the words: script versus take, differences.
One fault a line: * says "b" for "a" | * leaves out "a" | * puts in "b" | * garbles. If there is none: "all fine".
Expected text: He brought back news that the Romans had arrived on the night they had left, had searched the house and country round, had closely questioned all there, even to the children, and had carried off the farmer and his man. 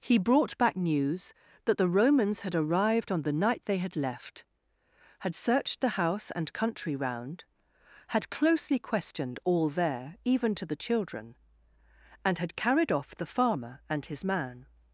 all fine